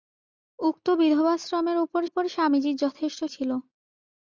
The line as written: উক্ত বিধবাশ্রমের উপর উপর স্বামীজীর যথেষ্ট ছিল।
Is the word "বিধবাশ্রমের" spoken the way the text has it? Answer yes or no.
yes